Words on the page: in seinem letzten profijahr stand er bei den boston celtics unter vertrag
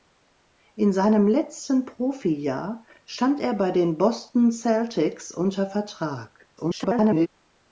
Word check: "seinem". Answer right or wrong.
right